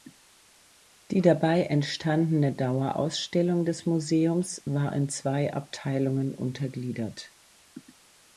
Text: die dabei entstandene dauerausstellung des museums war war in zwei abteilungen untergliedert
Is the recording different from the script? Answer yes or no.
yes